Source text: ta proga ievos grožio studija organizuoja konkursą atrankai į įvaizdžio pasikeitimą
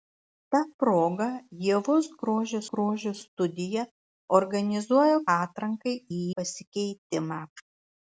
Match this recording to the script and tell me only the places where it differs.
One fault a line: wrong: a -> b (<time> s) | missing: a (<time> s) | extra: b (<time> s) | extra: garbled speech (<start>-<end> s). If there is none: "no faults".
extra: grožio (2.7 s)
missing: konkursą (5.2 s)
missing: įvaizdžio (6.2 s)